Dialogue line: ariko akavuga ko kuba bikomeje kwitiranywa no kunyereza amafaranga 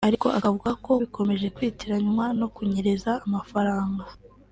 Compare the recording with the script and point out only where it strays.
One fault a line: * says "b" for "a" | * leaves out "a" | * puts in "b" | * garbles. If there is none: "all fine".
* leaves out "kuba"